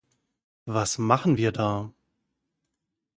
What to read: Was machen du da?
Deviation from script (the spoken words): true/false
true